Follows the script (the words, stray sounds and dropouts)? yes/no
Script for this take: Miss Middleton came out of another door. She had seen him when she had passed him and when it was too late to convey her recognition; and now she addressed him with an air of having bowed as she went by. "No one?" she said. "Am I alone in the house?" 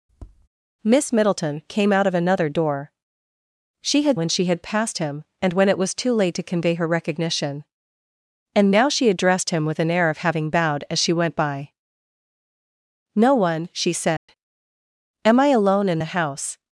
no